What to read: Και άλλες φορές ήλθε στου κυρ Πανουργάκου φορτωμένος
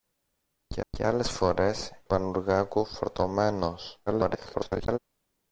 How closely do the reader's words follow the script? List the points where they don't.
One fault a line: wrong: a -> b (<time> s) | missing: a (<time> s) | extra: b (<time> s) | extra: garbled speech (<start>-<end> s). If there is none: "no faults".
extra: και (0.9 s)
missing: ήλθε στου κυρ (1.9 s)
extra: garbled speech (4.1-5.0 s)